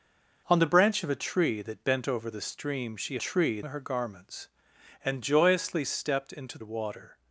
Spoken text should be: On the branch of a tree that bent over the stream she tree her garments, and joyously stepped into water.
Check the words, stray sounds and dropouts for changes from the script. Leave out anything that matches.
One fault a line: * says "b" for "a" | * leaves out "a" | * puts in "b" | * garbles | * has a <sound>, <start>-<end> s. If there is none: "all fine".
all fine